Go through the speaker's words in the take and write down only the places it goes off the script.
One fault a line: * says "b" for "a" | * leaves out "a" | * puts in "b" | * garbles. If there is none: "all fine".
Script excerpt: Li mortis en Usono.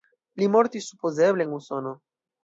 * puts in "supozeble"